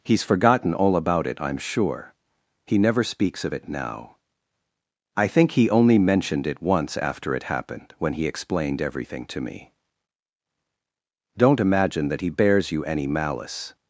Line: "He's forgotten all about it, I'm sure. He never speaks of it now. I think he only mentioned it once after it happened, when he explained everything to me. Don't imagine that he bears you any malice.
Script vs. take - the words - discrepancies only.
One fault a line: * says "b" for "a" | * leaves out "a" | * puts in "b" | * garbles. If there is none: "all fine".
all fine